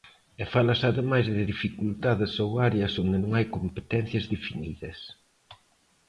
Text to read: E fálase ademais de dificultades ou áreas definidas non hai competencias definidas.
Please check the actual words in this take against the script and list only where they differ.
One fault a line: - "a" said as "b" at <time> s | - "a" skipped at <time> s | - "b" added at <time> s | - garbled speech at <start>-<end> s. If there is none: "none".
- "definidas" said as "onde" at 3.0 s